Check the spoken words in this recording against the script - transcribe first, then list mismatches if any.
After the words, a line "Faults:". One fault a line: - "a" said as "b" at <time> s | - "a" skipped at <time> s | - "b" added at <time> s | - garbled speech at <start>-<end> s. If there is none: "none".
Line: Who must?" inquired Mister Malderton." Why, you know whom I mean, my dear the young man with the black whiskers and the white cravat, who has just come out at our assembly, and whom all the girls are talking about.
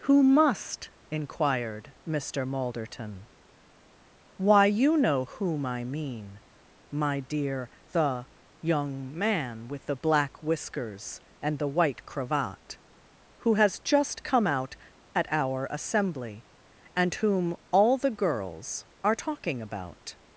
Who must?" inquired Mister Malderton." Why, you know whom I mean, my dear the young man with the black whiskers and the white cravat, who has just come out at our assembly, and whom all the girls are talking about.
Faults:
none